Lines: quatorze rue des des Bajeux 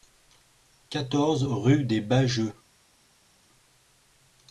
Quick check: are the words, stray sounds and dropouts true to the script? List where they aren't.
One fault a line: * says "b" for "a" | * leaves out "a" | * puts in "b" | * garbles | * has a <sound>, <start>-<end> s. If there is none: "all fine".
* leaves out "des"